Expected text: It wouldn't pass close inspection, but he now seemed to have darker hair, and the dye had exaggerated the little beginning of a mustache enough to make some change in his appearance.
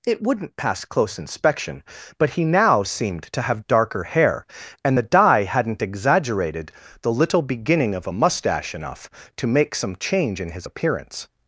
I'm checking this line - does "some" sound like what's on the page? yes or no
yes